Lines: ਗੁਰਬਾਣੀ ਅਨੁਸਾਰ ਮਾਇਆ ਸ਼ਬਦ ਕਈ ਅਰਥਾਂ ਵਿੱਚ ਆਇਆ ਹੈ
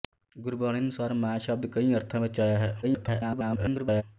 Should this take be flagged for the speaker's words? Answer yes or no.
yes